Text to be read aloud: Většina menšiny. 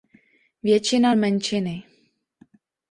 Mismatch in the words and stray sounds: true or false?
false